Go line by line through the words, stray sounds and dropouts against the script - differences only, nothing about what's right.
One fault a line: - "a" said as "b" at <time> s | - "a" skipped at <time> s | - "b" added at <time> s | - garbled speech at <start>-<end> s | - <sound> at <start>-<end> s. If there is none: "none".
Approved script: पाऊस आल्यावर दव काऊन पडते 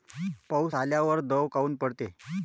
none